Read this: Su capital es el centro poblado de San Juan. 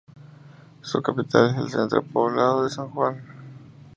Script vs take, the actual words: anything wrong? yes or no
no